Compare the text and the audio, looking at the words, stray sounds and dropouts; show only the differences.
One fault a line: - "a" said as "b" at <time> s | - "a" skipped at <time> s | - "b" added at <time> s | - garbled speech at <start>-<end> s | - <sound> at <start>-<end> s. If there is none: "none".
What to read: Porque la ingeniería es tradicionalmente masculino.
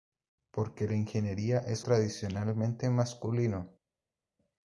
none